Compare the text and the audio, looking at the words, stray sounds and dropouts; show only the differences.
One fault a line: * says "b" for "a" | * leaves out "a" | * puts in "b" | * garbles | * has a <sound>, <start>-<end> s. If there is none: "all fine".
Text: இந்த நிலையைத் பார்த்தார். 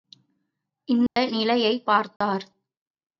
* has a dropout, 1.1-1.2 s
* has a dropout, 2.2-2.2 s